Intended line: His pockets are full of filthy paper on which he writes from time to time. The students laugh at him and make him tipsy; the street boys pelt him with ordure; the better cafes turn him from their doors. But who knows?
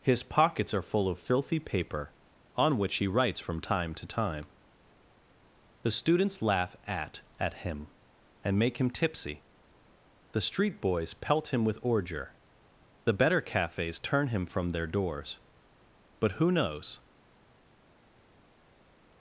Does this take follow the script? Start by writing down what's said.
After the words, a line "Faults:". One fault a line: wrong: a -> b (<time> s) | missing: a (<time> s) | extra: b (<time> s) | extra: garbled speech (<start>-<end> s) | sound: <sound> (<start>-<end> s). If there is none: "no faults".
His pockets are full of filthy paper on which he writes from time to time. The students laugh at at him and make him tipsy; the street boys pelt him with ordure; the better cafes turn him from their doors. But who knows?
Faults:
extra: at (7.4 s)